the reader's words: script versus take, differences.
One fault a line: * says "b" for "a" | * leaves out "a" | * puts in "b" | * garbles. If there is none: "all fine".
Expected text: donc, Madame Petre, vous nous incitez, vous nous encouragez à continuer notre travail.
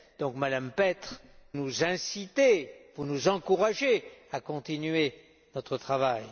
* leaves out "vous"